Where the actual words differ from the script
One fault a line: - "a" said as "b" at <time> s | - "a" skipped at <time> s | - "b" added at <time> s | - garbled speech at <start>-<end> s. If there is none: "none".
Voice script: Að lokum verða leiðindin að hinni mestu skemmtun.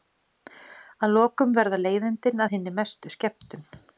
none